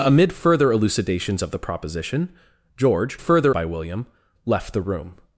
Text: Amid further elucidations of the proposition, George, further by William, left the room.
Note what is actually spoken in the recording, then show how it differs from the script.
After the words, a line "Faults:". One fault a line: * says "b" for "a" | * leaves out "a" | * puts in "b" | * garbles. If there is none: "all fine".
Amid further elucidations of the proposition, George, further by William, left the room.
Faults:
all fine